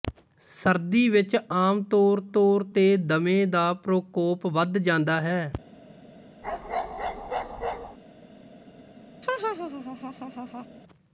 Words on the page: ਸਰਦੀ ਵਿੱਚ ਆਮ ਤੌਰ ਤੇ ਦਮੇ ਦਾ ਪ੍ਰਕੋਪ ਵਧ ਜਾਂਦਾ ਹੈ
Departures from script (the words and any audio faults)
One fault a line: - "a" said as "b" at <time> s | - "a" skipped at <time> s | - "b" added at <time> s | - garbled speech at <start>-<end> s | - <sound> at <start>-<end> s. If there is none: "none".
- "ਤੌਰ" added at 2.3 s
- bark at 6.4-8.0 s
- laugh at 9.2-10.7 s